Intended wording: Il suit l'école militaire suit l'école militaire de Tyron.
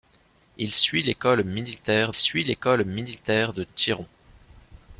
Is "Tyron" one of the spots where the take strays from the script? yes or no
no